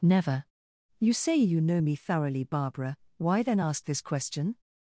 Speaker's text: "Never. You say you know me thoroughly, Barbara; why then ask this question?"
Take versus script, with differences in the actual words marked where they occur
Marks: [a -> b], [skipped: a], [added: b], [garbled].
"Never. You say you know me thoroughly, Barbara; why then ask this question?"